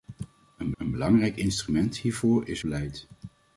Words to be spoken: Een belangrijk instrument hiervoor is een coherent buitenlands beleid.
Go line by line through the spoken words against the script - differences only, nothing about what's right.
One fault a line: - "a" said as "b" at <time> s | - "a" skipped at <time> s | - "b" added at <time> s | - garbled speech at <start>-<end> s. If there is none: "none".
- "een" added at 0.8 s
- "een coherent buitenlands" skipped at 2.6 s